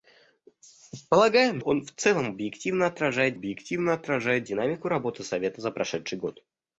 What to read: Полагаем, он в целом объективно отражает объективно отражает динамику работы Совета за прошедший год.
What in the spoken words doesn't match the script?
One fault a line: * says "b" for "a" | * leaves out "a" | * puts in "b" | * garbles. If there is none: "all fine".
all fine